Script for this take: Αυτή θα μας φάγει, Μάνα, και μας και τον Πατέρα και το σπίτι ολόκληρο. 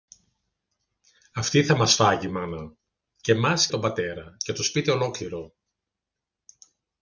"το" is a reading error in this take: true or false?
false